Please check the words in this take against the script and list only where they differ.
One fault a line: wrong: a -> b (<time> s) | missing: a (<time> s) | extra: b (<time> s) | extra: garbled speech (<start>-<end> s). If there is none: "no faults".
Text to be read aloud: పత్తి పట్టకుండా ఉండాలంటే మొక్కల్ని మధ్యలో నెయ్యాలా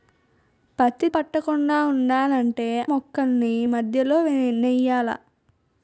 no faults